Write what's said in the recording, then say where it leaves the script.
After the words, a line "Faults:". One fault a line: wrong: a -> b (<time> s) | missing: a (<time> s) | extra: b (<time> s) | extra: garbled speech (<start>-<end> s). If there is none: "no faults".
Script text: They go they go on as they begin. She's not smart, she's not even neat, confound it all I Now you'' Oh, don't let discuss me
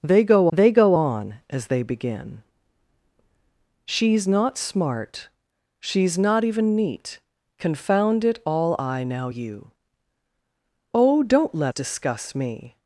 They go they go on as they begin. She's not smart, she's not even neat, confound it all I Now you'' Oh, don't let discuss me
Faults:
no faults